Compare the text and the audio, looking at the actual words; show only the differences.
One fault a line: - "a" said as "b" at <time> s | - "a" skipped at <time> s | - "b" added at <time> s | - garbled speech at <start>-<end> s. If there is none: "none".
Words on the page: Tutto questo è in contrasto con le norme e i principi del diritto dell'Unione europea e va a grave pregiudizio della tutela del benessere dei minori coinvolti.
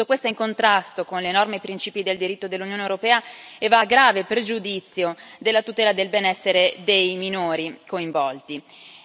none